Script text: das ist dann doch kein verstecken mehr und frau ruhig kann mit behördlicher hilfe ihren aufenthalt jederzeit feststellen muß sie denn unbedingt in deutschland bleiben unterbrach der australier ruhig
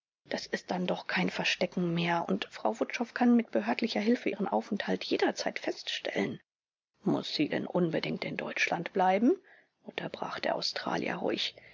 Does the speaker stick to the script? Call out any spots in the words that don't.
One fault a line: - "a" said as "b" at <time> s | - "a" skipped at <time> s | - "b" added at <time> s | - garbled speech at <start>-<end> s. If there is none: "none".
- "ruhig" said as "wutschow" at 2.8 s